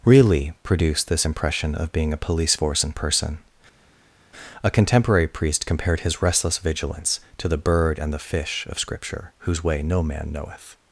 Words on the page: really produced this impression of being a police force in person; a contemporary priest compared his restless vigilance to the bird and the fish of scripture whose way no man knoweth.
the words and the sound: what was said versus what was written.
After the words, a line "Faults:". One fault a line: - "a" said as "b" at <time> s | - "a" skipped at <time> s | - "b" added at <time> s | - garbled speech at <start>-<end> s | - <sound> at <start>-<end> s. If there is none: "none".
really produced this impression of being a police force in person; a contemporary priest compared his restless vigilance to the bird and the fish of scripture whose way no man knoweth.
Faults:
none